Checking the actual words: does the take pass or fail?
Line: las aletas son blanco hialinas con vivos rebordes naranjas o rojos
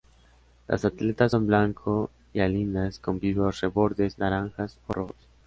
pass